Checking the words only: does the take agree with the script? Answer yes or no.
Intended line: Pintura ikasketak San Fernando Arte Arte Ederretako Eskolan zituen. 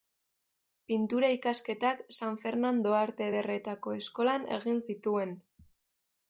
no